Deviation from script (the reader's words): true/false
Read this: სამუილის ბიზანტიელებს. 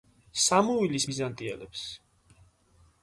false